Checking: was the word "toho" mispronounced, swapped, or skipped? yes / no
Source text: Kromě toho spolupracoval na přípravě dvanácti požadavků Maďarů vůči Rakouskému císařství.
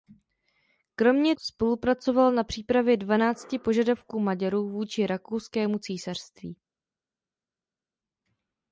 yes